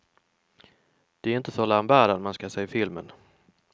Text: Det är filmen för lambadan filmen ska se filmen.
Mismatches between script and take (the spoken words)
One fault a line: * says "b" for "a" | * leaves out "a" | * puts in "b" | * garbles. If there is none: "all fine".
* says "inte" for "filmen"
* says "man" for "filmen"